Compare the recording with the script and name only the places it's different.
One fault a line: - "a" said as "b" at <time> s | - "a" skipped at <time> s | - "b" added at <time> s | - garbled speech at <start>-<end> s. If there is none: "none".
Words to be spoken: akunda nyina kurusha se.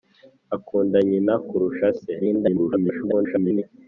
- garbled speech at 2.2-3.6 s